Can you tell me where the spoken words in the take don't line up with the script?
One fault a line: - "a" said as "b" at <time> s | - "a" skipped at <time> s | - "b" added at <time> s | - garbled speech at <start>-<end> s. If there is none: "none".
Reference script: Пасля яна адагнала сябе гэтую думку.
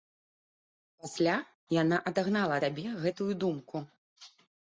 none